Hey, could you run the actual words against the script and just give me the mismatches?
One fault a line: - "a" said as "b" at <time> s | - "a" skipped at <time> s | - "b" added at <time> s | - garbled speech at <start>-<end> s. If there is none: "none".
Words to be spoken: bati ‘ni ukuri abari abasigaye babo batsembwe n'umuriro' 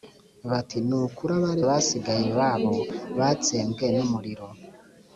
none